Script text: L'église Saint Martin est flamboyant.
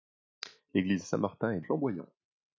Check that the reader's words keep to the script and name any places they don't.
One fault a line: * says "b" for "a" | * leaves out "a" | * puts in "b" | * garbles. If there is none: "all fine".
all fine